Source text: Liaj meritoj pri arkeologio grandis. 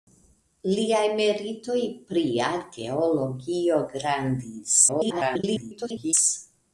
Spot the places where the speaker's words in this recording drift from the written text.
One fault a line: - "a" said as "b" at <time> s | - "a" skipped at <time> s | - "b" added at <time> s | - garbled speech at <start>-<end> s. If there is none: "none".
- garbled speech at 4.9-6.1 s